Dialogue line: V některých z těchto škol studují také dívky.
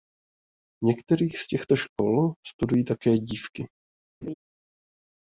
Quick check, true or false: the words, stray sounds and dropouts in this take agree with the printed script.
false